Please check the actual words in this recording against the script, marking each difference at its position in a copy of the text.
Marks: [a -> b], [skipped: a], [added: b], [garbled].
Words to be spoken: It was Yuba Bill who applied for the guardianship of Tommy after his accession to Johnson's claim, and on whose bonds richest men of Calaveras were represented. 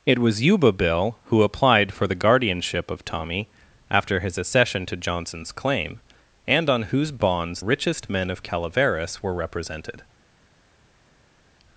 It was Yuba Bill who applied for the guardianship of Tommy after his accession to Johnson's claim, and on whose bonds richest men of Calaveras were represented.